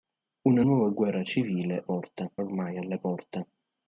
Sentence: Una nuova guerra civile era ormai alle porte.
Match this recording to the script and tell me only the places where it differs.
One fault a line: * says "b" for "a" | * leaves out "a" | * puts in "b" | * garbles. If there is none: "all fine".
* says "porte" for "era"